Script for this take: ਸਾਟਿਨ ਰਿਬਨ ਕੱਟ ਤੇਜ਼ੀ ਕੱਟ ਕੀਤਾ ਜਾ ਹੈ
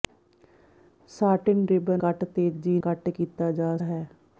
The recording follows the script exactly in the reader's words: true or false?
true